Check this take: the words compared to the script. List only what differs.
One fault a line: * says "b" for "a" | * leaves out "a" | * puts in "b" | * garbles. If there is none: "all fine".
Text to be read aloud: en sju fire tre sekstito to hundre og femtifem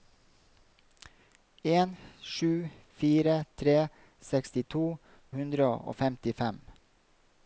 * leaves out "to"